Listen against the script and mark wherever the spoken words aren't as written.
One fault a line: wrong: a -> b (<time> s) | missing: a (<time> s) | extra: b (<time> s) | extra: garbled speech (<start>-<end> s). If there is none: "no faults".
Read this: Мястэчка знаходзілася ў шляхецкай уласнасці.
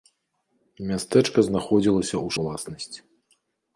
missing: шляхецкай (2.3 s)